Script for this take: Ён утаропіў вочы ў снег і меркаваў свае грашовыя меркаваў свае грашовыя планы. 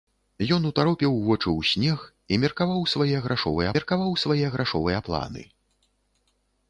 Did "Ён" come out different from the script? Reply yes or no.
no